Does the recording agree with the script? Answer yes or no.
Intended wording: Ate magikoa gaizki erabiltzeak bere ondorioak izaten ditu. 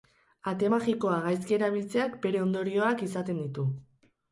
yes